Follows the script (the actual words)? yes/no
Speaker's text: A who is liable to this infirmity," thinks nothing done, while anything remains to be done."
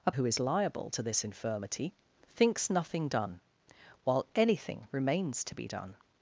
yes